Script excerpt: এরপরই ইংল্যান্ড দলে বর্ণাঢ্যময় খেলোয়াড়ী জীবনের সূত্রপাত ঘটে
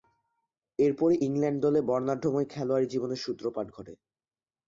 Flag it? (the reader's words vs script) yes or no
no